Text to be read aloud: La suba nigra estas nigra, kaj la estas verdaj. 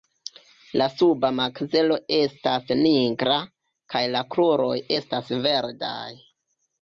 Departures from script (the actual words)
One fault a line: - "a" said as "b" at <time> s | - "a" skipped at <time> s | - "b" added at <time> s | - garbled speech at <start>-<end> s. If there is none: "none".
- "nigra" said as "makzelo" at 1.4 s
- "kruroj" added at 4.4 s